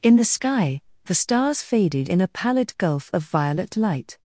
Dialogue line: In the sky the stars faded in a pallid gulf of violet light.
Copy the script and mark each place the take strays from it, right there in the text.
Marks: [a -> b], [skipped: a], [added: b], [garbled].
In the sky the stars faded in a pallid gulf of violet light.